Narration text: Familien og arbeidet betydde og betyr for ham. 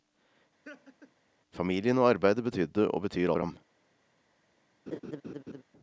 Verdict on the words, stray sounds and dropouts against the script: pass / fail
fail